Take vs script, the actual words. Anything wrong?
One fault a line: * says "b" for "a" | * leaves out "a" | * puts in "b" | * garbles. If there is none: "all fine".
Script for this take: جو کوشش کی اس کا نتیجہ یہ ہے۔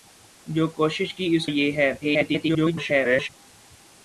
* leaves out "کا نتیجہ"
* garbles